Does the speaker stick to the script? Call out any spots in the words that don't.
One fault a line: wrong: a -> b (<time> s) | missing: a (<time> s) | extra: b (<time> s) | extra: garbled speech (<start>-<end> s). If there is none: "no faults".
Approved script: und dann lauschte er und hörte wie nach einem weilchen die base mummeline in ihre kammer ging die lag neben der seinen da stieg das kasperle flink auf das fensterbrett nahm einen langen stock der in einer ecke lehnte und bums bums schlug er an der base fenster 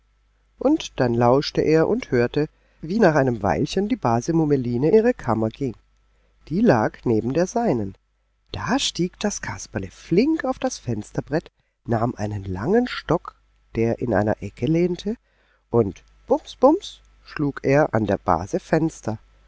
missing: in (4.9 s)